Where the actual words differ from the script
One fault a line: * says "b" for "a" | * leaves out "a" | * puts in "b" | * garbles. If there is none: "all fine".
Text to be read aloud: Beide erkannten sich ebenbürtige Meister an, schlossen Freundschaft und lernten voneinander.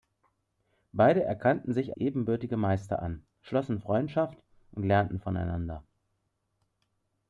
all fine